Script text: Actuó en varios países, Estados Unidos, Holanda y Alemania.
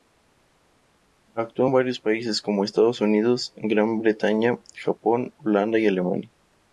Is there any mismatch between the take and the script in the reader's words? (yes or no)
yes